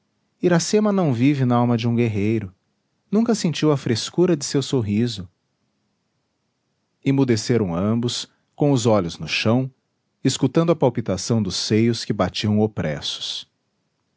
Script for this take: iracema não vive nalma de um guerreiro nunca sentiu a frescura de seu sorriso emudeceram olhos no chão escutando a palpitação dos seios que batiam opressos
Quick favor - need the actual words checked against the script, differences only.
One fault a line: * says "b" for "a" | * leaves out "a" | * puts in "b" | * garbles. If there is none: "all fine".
* puts in "ambos com os"